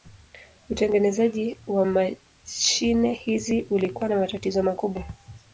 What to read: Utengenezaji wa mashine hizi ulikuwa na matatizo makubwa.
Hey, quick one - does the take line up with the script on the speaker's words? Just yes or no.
yes